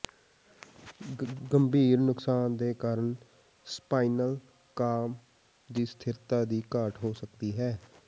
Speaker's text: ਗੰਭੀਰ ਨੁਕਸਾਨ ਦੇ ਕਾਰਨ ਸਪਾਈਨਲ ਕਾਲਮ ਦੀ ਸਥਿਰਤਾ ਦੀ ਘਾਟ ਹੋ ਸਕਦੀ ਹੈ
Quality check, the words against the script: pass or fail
pass